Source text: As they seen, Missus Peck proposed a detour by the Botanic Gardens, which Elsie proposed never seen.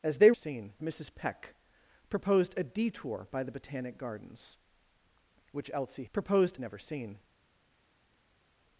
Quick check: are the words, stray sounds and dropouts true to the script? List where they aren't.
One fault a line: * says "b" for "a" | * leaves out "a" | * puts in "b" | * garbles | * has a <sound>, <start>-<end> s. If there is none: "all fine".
all fine